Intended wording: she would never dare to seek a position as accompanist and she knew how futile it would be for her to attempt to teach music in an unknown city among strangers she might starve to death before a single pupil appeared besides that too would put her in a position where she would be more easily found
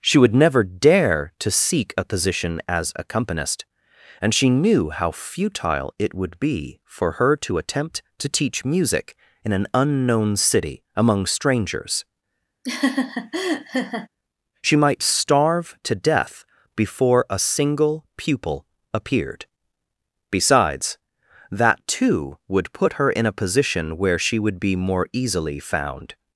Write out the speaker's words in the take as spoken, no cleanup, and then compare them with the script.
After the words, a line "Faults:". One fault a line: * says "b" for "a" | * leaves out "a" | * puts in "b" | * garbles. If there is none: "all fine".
she would never dare to seek a position as accompanist and she knew how futile it would be for her to attempt to teach music in an unknown city among strangers she might starve to death before a single pupil appeared besides that too would put her in a position where she would be more easily found
Faults:
all fine